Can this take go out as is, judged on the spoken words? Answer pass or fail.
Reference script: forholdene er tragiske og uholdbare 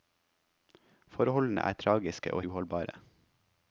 pass